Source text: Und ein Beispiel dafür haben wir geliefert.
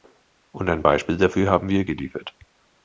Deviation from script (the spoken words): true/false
false